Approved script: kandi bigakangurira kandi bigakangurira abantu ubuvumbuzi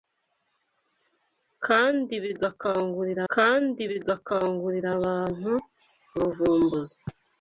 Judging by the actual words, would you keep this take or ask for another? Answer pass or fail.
pass